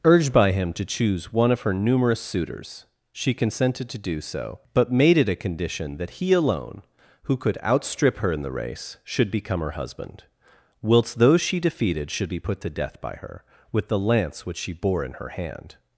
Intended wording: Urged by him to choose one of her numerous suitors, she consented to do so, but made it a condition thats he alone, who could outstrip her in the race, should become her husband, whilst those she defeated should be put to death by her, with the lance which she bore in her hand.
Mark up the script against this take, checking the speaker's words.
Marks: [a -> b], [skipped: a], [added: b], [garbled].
Urged by him to choose one of her numerous suitors, she consented to do so, but made it a condition [thats -> that] he alone, who could outstrip her in the race, should become her husband, whilst those she defeated should be put to death by her, with the lance which she bore in her hand.